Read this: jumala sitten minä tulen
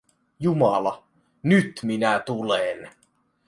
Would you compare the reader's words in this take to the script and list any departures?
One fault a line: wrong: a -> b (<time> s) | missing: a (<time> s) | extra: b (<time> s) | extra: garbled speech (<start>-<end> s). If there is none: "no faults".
wrong: sitten -> nyt (1.4 s)